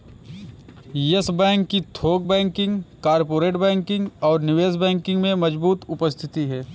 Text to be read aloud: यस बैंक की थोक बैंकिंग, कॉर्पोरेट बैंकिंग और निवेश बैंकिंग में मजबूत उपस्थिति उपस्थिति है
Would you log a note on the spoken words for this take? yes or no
yes